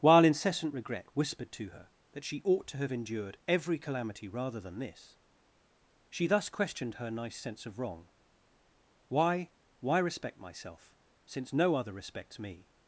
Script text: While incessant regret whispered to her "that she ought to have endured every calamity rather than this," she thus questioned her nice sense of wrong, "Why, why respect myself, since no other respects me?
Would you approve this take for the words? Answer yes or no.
yes